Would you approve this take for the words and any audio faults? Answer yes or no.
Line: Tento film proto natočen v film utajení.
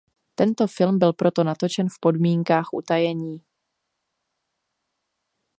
no